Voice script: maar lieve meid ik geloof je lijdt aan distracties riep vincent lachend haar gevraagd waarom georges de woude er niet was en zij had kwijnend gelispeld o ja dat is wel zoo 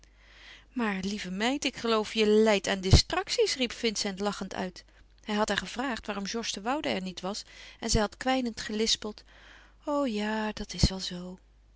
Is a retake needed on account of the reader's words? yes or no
yes